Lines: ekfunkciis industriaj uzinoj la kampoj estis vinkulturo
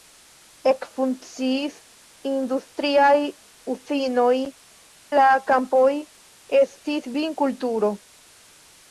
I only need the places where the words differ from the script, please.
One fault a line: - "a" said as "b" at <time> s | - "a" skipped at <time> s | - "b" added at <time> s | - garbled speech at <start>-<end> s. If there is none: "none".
none